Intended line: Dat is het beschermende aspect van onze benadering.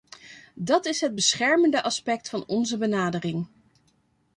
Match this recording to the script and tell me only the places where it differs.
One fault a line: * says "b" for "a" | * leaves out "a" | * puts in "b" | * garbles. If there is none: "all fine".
all fine